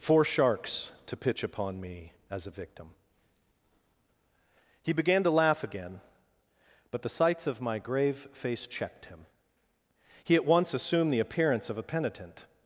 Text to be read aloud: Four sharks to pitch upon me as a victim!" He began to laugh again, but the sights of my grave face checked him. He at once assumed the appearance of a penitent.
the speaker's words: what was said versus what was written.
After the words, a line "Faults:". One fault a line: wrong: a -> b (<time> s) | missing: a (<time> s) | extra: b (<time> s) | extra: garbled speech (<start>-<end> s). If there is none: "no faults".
Four sharks to pitch upon me as a victim!" He began to laugh again, but the sights of my grave face checked him. He at once assumed the appearance of a penitent.
Faults:
no faults